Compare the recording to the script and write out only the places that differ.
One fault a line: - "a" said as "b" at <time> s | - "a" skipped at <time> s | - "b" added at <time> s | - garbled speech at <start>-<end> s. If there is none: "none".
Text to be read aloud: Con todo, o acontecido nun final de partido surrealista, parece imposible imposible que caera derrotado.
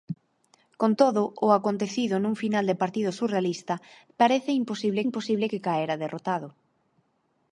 none